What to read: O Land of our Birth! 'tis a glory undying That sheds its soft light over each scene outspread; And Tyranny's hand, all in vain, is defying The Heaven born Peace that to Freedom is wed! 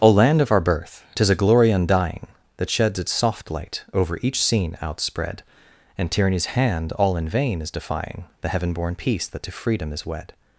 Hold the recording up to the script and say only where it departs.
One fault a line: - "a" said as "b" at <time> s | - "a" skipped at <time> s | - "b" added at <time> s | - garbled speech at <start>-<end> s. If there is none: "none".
none